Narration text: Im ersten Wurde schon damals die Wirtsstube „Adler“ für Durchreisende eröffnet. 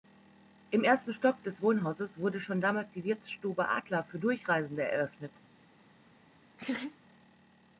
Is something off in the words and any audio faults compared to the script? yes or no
yes